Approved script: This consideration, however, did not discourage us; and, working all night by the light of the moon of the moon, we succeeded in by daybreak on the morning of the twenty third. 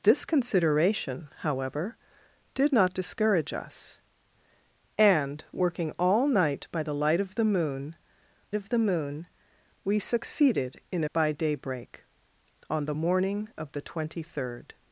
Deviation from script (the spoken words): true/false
false